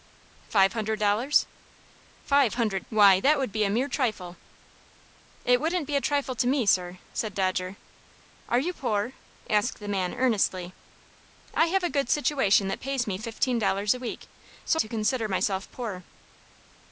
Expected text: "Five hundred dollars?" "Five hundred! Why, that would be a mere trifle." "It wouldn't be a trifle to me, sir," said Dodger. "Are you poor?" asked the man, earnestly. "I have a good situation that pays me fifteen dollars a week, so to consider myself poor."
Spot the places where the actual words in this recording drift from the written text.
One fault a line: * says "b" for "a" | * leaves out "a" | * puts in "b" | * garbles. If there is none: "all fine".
all fine